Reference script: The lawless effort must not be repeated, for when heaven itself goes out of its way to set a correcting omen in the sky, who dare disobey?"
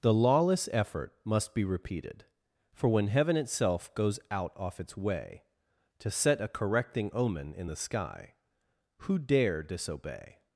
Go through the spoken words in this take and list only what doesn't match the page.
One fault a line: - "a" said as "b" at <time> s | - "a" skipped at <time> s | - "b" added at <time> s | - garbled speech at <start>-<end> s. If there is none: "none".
- "not" skipped at 1.5 s
- "of" said as "off" at 4.5 s